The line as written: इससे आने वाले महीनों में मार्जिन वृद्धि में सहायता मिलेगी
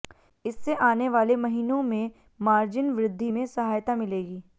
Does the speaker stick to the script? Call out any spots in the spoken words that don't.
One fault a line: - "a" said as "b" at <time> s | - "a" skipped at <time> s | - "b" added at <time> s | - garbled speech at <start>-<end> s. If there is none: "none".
none